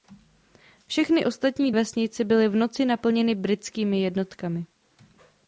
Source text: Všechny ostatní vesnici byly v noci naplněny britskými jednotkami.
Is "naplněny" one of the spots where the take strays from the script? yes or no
no